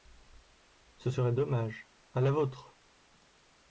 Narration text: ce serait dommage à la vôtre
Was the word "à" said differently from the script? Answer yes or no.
no